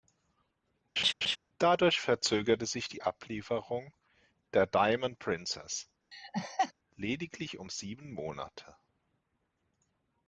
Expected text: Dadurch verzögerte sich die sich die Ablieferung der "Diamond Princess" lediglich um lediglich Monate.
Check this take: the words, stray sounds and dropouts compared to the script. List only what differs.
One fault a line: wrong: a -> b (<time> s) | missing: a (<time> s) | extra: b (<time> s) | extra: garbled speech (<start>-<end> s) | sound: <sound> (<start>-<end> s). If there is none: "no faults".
sound: laugh (1.0-1.4 s)
missing: sich die (3.0 s)
sound: laugh (6.1-6.7 s)
wrong: lediglich -> sieben (7.7 s)